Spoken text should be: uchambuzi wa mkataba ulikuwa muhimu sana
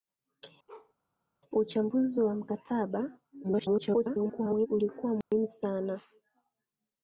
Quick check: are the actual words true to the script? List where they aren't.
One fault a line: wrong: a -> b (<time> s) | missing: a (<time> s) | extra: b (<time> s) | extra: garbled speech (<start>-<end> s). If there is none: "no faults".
extra: garbled speech (3.4-4.7 s)